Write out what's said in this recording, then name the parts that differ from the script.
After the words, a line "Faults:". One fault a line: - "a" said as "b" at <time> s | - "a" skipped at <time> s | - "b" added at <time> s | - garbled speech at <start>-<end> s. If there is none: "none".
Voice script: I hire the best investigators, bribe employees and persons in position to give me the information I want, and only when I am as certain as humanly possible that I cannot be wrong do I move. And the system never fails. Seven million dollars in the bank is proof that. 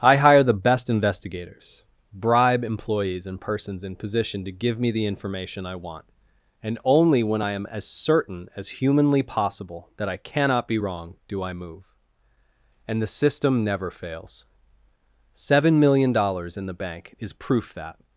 I hire the best investigators, bribe employees and persons in position to give me the information I want, and only when I am as certain as humanly possible that I cannot be wrong do I move. And the system never fails. Seven million dollars in the bank is proof that.
Faults:
none